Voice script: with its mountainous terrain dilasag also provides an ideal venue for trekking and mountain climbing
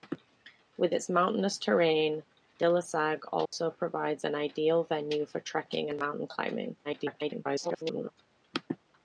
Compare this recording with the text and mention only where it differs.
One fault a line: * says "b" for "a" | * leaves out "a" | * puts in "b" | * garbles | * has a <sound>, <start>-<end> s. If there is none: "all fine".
* has a dropout, 3.5-3.5 s
* garbles